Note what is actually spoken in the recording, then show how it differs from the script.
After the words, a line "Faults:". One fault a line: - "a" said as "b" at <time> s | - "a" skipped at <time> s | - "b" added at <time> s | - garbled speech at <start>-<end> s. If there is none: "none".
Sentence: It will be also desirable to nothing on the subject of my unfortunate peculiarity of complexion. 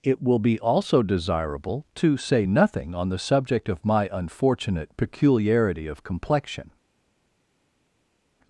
It will be also desirable to say nothing on the subject of my unfortunate peculiarity of complexion.
Faults:
- "say" added at 2.2 s